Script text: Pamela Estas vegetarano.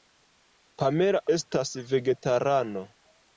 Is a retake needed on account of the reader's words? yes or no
no